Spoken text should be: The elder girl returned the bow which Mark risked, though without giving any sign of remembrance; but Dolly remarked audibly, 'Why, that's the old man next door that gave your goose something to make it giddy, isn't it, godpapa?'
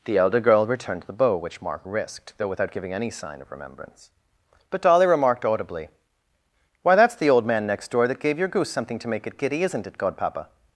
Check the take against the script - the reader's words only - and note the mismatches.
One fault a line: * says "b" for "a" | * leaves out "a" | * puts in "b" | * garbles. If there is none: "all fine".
all fine